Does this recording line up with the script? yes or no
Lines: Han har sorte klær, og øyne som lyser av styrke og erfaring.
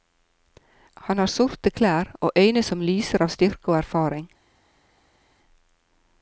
yes